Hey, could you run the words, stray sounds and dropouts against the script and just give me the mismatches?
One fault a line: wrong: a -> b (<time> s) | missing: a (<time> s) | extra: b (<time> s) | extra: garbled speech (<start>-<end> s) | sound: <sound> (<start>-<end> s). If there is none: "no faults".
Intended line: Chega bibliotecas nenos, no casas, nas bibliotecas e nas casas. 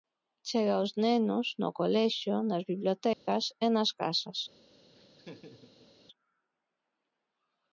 wrong: bibliotecas -> aos (0.8 s)
wrong: casas -> colexio (1.8 s)
sound: dropout (3.1-3.3 s)
sound: laugh (4.9-5.9 s)